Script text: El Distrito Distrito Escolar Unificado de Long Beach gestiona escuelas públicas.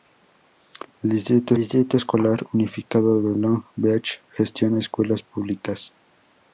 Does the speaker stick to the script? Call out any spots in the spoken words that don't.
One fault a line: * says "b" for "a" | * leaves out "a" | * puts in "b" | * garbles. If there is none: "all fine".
all fine